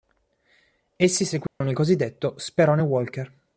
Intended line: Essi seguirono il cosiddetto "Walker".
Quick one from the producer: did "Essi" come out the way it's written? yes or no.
yes